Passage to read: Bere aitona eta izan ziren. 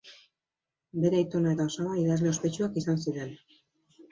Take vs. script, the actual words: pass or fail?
fail